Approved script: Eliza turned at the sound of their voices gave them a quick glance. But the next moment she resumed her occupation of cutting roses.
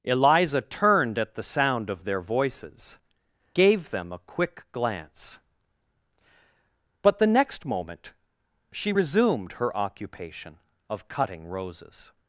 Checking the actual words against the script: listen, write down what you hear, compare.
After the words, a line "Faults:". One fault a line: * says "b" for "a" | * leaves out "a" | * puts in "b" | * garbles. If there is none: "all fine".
Eliza turned at the sound of their voices gave them a quick glance. But the next moment she resumed her occupation of cutting roses.
Faults:
all fine